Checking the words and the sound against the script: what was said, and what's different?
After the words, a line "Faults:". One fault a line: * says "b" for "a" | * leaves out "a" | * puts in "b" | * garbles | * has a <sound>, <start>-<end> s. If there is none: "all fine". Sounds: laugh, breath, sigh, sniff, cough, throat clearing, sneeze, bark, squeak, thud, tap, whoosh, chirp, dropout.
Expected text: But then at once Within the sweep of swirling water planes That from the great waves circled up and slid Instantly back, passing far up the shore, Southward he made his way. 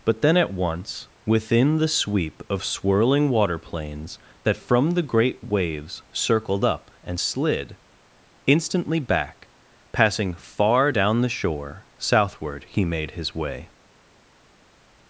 But then at once Within the sweep of swirling water planes That from the great waves circled up and slid Instantly back, passing far down the shore, Southward he made his way.
Faults:
* says "down" for "up"